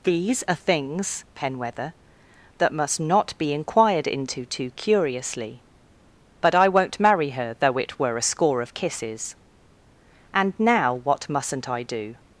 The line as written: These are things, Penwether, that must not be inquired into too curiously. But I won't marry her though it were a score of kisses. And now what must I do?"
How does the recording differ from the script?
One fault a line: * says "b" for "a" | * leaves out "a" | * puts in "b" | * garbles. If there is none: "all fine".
* says "mustn't" for "must"